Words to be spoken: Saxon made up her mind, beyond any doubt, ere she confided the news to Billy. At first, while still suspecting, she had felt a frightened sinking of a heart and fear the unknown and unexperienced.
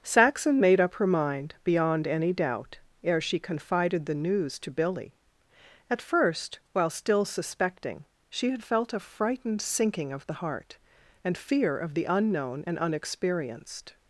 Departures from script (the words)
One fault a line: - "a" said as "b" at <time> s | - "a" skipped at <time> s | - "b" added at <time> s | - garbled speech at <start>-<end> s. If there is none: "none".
- "a" said as "the" at 10.2 s
- "of" added at 11.8 s